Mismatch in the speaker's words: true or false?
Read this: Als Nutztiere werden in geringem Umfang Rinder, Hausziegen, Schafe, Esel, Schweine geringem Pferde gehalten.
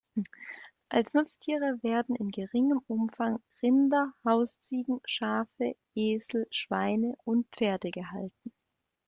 true